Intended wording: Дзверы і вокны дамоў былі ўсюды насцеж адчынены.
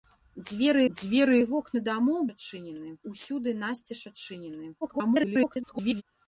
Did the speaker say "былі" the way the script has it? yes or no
no